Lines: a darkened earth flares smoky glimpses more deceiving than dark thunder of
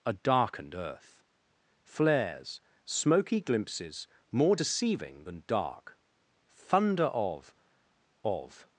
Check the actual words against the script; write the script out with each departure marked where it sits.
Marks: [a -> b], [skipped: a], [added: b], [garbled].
a darkened earth flares smoky glimpses more deceiving than dark thunder of [added: of]